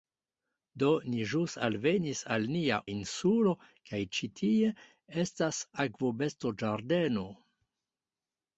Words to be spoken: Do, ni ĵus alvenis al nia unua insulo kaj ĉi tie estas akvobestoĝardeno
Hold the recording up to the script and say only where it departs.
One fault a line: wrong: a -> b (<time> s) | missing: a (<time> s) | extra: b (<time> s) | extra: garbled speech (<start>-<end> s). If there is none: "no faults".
missing: unua (2.8 s)